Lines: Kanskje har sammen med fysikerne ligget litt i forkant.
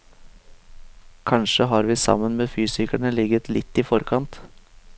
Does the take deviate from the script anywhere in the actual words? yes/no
yes